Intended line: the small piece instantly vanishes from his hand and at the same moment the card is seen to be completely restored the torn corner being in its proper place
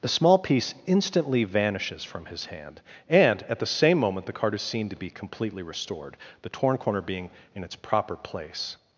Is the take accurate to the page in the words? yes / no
yes